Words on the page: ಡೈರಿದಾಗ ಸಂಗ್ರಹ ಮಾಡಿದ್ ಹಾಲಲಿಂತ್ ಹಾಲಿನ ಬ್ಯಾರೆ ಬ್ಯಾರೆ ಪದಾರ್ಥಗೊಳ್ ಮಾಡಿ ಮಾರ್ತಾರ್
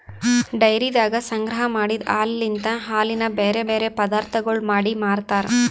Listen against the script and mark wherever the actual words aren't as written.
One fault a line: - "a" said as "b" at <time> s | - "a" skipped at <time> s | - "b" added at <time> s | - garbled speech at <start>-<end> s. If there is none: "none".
none